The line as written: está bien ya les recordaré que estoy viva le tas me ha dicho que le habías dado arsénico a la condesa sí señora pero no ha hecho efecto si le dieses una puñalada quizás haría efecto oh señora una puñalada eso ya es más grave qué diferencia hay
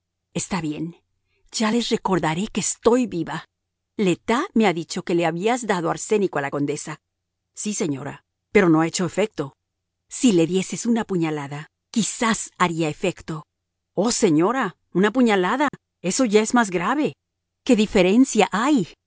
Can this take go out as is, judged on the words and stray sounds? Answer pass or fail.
fail